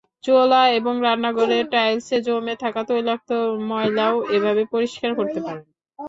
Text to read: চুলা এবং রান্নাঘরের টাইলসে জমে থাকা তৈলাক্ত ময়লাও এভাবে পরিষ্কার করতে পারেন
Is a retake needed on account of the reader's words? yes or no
no